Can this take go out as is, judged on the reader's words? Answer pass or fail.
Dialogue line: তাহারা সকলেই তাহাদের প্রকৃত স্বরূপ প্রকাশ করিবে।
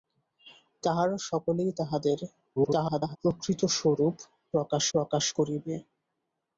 fail